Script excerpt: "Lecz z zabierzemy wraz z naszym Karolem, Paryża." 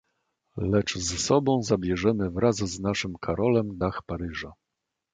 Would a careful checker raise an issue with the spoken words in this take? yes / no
yes